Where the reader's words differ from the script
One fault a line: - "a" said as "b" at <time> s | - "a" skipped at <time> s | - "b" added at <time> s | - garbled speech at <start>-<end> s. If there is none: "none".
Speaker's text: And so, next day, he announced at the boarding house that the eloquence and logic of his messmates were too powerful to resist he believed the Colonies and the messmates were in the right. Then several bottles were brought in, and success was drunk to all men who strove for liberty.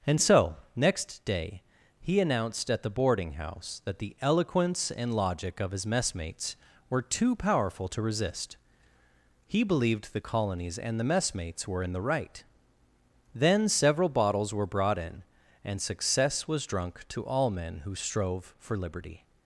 none